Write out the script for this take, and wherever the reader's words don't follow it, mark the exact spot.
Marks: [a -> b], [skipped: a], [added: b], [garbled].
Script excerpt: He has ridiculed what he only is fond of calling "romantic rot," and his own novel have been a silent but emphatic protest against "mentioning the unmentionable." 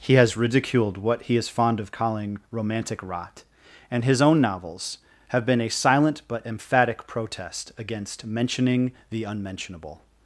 He has ridiculed what he [skipped: only] is fond of calling "romantic rot," and his own [novel -> novels] have been a silent but emphatic protest against "mentioning the unmentionable."